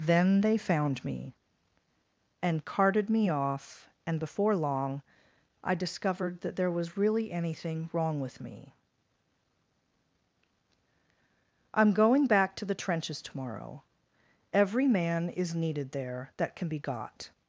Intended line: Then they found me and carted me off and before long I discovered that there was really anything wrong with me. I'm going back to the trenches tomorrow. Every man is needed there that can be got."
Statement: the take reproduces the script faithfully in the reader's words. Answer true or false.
true